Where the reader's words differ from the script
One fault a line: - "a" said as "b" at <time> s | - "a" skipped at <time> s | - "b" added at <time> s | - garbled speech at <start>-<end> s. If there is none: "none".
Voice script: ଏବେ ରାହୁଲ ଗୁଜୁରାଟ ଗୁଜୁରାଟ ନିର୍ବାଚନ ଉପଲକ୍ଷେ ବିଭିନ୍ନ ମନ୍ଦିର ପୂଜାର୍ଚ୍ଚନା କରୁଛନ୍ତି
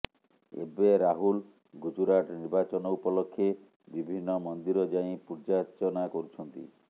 - "ଗୁଜୁରାଟ" skipped at 2.4 s
- "ଯାଇ" added at 4.9 s